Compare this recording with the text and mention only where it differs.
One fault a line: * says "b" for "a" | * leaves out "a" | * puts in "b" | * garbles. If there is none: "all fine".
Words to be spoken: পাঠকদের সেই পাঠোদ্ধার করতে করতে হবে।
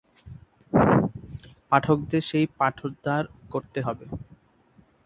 * leaves out "করতে"